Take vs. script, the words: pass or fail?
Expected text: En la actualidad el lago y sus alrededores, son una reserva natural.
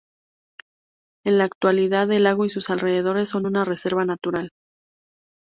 pass